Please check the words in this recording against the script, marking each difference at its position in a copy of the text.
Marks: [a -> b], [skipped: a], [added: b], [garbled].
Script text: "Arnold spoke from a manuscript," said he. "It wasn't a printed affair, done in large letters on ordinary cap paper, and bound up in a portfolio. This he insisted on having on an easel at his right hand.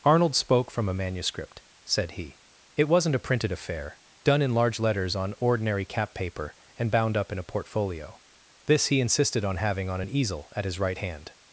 "Arnold spoke from a manuscript," said he. "It wasn't a printed affair, done in large letters on ordinary cap paper, and bound up in a portfolio. This he insisted on having on an easel at his right hand.